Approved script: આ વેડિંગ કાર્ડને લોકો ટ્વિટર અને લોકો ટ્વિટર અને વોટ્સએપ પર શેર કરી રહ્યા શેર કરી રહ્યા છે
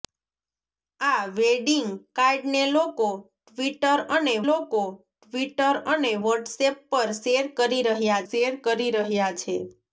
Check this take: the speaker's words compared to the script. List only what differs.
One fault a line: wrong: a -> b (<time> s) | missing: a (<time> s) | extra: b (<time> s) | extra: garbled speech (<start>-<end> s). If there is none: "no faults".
no faults